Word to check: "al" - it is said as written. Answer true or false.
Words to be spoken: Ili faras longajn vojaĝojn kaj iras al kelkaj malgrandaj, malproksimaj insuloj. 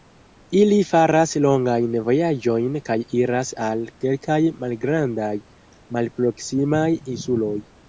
true